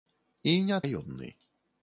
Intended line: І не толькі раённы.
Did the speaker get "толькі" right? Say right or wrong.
wrong